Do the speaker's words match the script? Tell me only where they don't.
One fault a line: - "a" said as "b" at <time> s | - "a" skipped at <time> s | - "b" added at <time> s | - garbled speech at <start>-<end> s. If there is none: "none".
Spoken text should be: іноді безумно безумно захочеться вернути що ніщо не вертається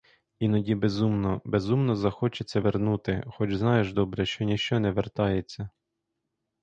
- "хоч знаєш добре" added at 3.3 s